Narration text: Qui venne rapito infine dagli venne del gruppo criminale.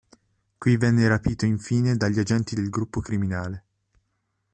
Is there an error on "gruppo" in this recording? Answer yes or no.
no